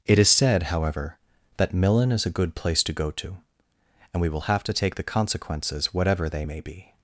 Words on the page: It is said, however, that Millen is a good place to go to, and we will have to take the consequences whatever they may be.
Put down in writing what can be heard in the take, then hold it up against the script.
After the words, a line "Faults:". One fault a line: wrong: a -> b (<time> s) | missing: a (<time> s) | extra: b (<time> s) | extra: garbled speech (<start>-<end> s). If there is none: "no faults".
It is said, however, that Millen is a good place to go to, and we will have to take the consequences whatever they may be.
Faults:
no faults